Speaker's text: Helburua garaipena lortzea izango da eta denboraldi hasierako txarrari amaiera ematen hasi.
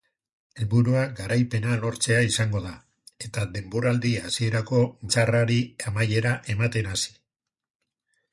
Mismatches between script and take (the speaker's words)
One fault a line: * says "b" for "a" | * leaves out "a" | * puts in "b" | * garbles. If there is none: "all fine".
all fine